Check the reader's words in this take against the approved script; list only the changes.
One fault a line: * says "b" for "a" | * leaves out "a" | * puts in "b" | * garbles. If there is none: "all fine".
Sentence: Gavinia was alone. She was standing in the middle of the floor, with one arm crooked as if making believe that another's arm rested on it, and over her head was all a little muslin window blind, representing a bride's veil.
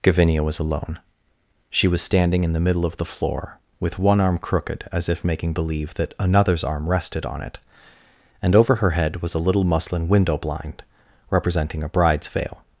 * leaves out "all"